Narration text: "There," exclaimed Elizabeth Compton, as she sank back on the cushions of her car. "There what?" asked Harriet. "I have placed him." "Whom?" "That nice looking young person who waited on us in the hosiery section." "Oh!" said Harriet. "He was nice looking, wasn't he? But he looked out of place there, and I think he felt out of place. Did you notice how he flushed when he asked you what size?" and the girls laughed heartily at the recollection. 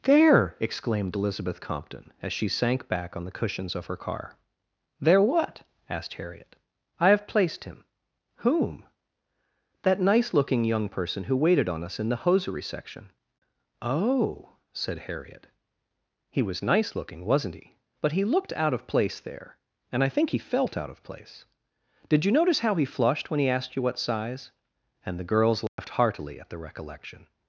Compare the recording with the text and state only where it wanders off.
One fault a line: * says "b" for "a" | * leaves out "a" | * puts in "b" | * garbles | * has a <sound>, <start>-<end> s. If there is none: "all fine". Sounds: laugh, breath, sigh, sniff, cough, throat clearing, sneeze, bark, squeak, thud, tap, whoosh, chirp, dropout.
* has a dropout, 25.7-25.8 s